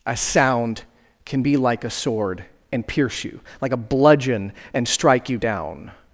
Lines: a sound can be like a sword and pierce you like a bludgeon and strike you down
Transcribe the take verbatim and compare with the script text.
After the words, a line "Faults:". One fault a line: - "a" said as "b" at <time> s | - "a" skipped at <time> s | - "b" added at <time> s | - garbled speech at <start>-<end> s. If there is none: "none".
a sound can be like a sword and pierce you like a bludgeon and strike you down
Faults:
none